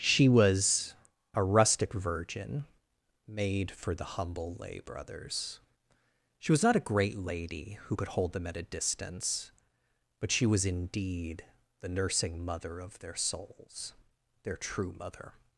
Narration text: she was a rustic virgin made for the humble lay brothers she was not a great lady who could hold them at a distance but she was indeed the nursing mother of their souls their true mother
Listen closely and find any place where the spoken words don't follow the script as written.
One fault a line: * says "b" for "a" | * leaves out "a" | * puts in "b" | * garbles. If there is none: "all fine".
all fine